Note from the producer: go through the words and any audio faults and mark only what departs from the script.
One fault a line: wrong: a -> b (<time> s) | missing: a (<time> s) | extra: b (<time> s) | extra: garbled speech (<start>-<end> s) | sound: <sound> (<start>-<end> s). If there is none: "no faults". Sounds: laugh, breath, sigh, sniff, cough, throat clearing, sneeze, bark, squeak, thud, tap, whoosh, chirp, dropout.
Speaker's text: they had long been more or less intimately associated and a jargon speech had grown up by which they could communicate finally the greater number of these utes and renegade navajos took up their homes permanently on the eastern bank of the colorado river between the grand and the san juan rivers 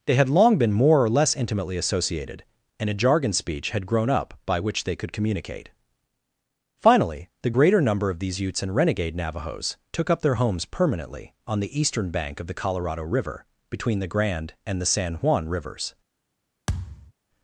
sound: thud (16.7-17.1 s)